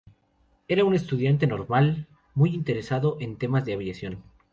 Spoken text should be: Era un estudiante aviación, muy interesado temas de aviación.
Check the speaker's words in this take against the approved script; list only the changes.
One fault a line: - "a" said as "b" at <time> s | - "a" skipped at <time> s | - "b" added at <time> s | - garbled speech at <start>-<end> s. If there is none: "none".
- "aviación" said as "normal" at 1.4 s
- "en" added at 3.2 s